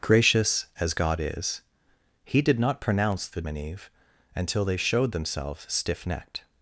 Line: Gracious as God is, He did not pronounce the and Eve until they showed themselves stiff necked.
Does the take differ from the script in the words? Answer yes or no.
no